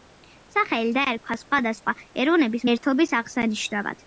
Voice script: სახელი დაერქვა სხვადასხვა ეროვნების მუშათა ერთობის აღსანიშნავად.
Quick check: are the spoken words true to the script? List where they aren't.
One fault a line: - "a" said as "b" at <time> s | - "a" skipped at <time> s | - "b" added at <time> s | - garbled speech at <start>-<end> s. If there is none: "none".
- "მუშათა" skipped at 2.7 s